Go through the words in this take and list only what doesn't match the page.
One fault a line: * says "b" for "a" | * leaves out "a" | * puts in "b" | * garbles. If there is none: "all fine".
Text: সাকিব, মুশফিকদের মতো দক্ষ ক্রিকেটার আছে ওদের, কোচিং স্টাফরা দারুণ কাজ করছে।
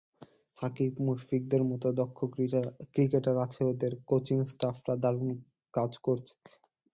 all fine